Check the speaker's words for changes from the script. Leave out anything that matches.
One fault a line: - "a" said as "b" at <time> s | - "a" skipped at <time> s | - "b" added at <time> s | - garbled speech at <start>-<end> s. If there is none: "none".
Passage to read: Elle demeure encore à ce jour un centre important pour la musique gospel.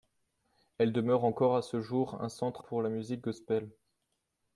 - "important" skipped at 2.6 s